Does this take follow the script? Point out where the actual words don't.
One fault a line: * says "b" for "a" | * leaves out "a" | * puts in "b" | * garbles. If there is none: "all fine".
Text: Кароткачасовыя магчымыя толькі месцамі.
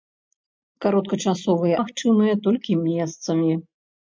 all fine